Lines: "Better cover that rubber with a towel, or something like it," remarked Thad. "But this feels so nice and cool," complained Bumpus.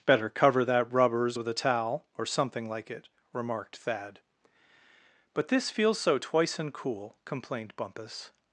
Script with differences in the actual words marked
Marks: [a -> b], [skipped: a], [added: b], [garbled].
"Better cover that [rubber -> rubbers] with a towel, or something like it," remarked Thad. "But this feels so [nice -> twice] and cool," complained Bumpus.